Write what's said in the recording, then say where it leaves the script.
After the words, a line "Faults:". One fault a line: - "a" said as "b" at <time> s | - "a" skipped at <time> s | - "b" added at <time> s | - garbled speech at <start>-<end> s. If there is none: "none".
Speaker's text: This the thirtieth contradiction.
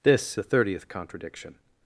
This the thirtieth contradiction.
Faults:
none